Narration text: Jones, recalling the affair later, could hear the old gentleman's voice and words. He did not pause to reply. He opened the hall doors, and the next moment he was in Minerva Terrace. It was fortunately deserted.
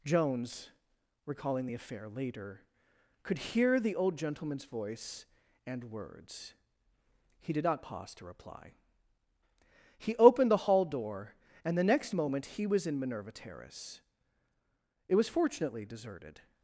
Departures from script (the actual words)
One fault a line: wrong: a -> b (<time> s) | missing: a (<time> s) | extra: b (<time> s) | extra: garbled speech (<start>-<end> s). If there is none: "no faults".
wrong: doors -> door (10.8 s)